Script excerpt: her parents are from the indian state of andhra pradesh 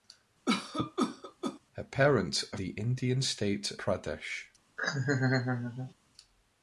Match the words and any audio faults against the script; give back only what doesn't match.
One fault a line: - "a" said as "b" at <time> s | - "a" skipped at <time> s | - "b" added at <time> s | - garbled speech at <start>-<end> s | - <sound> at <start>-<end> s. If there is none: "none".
- cough at 0.5-1.6 s
- "from" skipped at 2.6 s
- "of andhra" skipped at 3.7 s
- laugh at 4.8-5.9 s